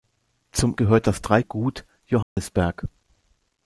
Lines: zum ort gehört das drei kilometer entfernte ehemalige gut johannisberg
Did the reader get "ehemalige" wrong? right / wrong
wrong